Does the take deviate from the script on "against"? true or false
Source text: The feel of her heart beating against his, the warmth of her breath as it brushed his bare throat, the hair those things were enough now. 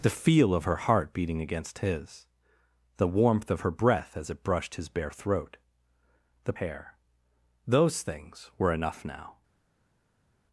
false